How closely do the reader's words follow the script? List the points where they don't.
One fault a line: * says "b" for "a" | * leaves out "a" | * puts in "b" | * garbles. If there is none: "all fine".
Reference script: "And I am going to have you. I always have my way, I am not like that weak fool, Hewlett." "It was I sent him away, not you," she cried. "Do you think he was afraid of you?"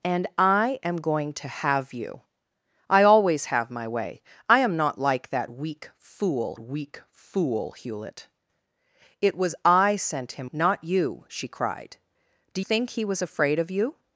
* puts in "weak fool"
* leaves out "away"
* leaves out "you"